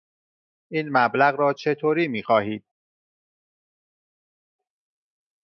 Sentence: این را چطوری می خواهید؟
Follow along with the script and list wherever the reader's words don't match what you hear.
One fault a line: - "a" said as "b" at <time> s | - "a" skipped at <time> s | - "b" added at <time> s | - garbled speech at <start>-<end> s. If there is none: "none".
- "مبلغ" added at 0.9 s